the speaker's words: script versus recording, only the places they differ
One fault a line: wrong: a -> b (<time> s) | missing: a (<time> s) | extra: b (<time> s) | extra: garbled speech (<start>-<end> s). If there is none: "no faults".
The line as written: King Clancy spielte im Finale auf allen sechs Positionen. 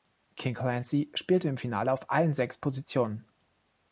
no faults